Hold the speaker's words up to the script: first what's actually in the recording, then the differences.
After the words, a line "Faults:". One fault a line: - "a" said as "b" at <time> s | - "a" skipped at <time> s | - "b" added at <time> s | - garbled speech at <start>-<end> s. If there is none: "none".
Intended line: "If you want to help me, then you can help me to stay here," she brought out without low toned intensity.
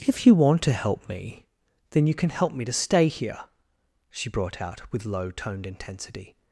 "If you want to help me, then you can help me to stay here," she brought out with low toned intensity.
Faults:
- "without" said as "with" at 4.9 s